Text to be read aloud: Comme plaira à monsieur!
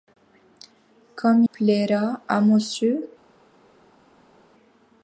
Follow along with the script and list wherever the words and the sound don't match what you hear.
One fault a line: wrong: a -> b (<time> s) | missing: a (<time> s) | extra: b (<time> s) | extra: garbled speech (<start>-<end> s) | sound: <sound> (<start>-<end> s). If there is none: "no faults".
no faults